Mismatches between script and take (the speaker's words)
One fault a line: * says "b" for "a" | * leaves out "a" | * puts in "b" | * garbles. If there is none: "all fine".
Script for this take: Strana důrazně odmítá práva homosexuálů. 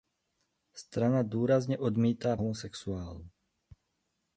* leaves out "práva"